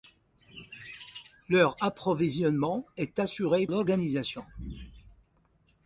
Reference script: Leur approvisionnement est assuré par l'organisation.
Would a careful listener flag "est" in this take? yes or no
no